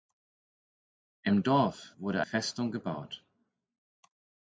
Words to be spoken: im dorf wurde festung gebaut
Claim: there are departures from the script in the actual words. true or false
false